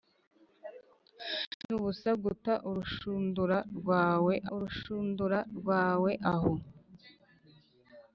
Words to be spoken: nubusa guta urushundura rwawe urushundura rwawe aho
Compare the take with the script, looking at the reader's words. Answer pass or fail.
pass